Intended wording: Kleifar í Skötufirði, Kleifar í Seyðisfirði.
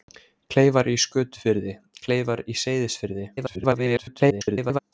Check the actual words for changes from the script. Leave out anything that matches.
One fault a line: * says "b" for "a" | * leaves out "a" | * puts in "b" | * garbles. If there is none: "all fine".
* garbles